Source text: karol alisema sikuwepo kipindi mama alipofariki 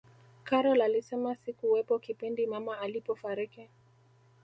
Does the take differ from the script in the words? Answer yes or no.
no